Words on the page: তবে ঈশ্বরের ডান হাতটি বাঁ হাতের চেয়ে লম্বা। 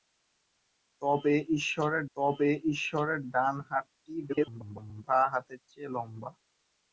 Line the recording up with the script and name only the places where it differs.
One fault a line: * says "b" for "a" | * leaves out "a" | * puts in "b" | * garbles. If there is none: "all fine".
* puts in "তবে ঈশ্বরের"
* garbles